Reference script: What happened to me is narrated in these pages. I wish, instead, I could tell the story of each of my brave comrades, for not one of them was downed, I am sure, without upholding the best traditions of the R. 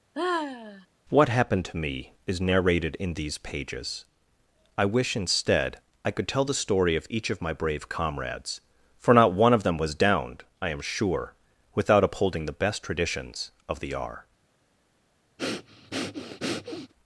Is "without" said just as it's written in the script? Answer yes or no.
yes